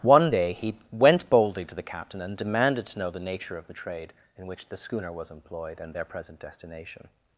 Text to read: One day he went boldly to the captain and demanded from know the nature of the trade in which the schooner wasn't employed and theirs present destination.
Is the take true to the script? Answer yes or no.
no